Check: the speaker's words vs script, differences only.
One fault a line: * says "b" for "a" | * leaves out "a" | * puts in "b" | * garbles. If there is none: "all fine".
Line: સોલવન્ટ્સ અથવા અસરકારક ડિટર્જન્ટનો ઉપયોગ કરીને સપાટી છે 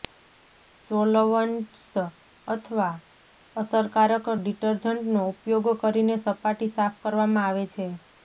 * puts in "સાફ કરવામાં આવે"